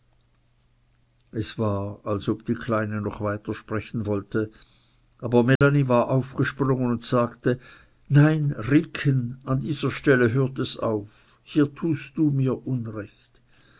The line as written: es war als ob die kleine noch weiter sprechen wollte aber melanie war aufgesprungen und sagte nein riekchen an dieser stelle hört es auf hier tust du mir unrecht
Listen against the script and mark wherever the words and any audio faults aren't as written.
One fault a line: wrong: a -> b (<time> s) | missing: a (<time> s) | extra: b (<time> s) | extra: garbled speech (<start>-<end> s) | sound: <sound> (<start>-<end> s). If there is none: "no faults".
sound: dropout (5.6-5.6 s)